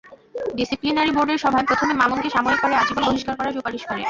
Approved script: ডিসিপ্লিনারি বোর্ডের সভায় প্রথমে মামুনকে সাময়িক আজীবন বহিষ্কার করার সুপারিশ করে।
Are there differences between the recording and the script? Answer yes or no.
yes